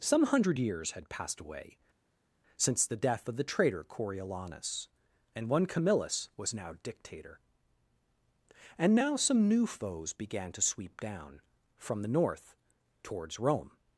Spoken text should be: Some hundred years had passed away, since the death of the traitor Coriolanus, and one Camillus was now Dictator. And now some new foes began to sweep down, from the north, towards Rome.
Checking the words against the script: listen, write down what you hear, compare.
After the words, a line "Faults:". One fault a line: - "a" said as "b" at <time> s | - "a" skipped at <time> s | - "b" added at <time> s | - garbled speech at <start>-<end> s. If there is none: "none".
Some hundred years had passed away, since the death of the traitor Coriolanus, and one Camillus was now Dictator. And now some new foes began to sweep down, from the north, towards Rome.
Faults:
none